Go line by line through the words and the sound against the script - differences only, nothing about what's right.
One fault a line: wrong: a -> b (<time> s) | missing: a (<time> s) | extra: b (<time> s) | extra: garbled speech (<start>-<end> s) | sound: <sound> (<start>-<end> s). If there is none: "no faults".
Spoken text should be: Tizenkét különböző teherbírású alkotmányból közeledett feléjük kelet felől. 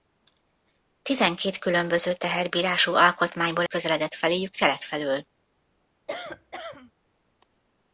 sound: cough (6.1-6.9 s)